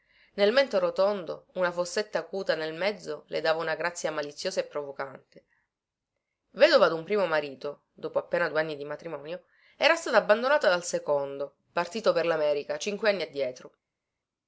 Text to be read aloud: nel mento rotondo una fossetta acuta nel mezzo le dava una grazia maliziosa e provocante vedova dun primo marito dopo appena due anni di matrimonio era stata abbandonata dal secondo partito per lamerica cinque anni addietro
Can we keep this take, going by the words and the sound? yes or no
yes